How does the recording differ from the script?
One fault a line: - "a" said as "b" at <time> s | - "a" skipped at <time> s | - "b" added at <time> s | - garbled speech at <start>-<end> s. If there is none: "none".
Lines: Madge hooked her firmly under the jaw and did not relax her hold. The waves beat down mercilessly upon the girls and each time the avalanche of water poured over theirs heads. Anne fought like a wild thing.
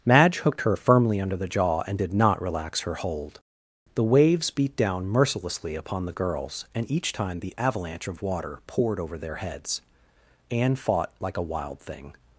- "theirs" said as "their" at 9.2 s